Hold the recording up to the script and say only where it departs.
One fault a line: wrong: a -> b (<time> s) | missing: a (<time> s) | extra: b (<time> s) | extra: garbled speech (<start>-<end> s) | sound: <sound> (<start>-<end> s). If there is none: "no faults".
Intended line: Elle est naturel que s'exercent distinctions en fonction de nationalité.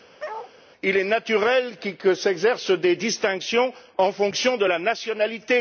sound: bark (0.2-0.5 s)
wrong: Elle -> Il (0.8 s)
extra: des (2.7 s)
extra: la (4.6 s)